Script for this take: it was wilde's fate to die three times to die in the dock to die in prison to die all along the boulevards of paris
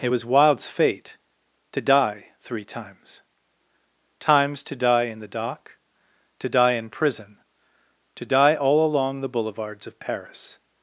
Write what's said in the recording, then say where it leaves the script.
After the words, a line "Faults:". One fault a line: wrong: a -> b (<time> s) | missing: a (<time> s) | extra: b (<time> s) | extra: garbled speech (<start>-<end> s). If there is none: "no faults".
it was wilde's fate to die three times times to die in the dock to die in prison to die all along the boulevards of paris
Faults:
extra: times (4.2 s)